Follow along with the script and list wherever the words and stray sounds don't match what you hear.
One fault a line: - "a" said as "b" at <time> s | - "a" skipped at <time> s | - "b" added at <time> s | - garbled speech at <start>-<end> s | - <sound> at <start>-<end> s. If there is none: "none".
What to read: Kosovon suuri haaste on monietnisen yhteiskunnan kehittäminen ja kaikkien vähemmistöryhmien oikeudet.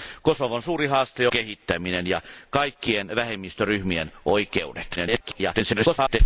- "on monietnisen yhteiskunnan" skipped at 1.3 s
- garbled speech at 5.0-6.2 s